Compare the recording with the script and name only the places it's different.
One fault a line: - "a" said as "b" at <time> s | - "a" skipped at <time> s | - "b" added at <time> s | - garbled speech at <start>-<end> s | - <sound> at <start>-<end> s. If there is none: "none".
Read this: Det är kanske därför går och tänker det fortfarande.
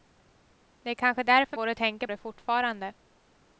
none